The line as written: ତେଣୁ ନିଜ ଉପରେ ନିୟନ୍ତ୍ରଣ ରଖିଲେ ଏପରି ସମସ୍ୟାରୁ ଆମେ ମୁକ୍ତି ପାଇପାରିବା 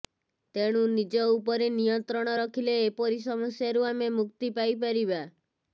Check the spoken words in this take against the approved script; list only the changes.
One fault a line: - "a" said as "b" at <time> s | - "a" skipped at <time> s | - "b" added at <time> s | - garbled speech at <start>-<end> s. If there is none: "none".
none